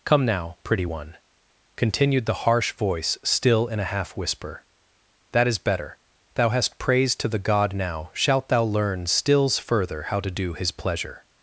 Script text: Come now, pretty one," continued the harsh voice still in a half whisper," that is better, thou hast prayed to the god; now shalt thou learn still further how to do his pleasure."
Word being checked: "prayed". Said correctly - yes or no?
no